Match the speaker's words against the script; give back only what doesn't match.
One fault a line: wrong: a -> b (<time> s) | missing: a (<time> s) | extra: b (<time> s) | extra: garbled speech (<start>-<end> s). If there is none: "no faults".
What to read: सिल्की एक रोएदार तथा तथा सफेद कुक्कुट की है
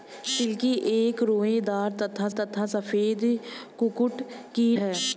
no faults